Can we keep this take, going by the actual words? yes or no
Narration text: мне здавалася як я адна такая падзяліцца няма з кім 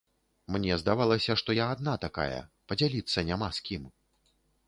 no